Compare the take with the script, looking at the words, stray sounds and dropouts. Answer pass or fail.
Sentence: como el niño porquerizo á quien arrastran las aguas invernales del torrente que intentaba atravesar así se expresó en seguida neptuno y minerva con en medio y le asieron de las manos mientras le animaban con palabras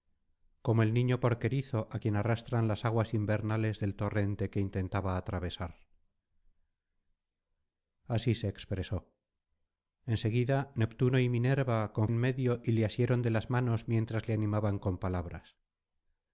pass